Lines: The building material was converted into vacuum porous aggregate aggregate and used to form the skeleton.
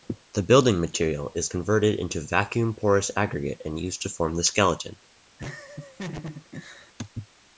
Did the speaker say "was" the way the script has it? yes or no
no